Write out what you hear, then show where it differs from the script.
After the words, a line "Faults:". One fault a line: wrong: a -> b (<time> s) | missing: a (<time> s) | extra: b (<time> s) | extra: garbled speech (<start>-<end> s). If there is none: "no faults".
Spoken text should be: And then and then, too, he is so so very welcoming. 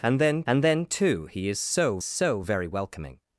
And then and then, too, he is so so very welcoming.
Faults:
no faults